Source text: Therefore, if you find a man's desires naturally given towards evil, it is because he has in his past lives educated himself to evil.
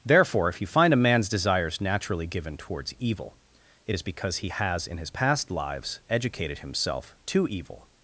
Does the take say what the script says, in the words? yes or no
yes